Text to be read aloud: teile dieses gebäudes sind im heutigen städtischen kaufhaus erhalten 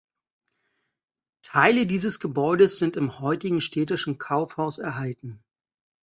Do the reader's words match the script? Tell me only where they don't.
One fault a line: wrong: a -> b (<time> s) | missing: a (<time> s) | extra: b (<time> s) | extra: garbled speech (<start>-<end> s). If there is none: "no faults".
no faults